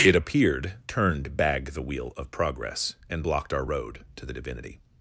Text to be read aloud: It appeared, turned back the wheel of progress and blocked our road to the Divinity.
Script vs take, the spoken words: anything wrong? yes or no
yes